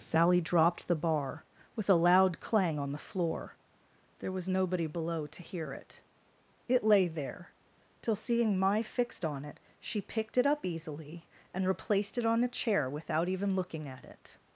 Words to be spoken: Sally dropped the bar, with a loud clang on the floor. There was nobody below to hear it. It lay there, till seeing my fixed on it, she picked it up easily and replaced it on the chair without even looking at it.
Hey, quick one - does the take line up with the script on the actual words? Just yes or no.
yes